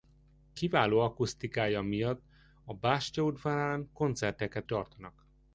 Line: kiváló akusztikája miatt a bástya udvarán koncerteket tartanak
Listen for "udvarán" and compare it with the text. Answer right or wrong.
right